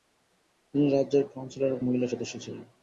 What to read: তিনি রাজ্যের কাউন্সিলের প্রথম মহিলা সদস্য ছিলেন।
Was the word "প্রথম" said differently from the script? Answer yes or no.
yes